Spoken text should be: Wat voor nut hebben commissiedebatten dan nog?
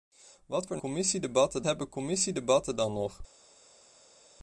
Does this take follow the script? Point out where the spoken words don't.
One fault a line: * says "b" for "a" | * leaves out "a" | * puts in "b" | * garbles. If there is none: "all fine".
* says "commissiedebatten" for "nut"